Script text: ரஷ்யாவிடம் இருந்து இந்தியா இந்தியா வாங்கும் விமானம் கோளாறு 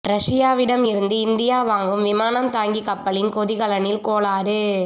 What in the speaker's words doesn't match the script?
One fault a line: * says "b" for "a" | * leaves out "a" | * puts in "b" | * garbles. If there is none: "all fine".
* leaves out "இந்தியா"
* puts in "தாங்கி கப்பலின் கொதிகலனில்"